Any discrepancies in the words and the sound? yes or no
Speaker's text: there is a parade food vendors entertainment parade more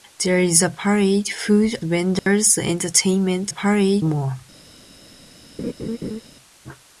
yes